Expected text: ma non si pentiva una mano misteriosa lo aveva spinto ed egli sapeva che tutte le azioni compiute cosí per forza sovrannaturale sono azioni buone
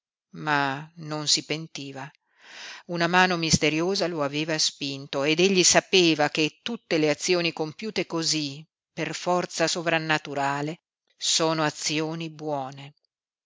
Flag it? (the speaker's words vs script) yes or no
no